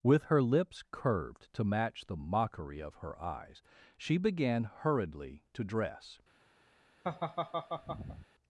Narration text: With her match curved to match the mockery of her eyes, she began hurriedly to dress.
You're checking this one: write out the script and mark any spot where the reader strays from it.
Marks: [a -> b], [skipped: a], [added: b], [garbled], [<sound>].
With her [match -> lips] curved to match the mockery of her eyes, she began hurriedly to dress. [laugh]